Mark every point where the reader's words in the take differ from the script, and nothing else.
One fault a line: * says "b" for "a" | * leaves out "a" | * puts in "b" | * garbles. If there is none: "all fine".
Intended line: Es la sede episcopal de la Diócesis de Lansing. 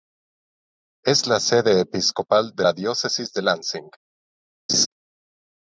all fine